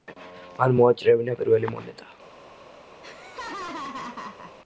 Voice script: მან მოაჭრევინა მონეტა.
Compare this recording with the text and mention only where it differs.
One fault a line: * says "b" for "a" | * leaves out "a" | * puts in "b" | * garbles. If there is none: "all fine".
* puts in "პირველი"